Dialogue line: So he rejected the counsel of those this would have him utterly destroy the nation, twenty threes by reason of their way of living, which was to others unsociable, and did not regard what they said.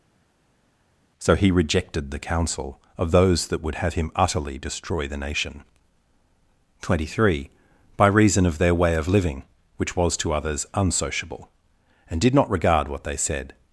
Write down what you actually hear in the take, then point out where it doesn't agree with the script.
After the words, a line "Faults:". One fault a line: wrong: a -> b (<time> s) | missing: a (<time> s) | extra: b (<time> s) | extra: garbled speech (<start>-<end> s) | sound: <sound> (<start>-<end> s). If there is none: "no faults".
So he rejected the counsel of those that would have him utterly destroy the nation, twenty three by reason of their way of living, which was to others unsociable, and did not regard what they said.
Faults:
wrong: this -> that (3.5 s)
wrong: threes -> three (7.2 s)